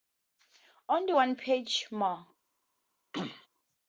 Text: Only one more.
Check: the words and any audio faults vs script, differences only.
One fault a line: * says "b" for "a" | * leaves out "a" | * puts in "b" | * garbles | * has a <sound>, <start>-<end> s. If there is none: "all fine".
* puts in "page"
* has a throat clearing, 3.1-3.5 s